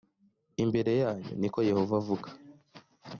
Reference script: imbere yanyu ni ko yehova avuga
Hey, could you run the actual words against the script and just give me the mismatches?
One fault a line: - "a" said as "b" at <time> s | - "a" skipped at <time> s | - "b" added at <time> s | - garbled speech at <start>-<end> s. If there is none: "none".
none